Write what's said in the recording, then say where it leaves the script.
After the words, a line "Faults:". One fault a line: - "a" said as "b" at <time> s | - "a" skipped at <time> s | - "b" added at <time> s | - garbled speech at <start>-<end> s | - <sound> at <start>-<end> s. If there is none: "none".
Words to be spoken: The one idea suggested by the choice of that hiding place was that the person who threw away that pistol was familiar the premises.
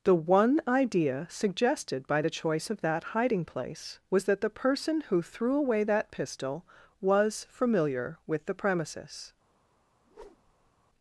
The one idea suggested by the choice of that hiding place was that the person who threw away that pistol was familiar with the premises.
Faults:
- "with" added at 8.3 s
- whoosh at 10.0-10.7 s